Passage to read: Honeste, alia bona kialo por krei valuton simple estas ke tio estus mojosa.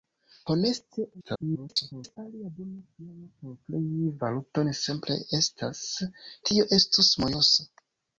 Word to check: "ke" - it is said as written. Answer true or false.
false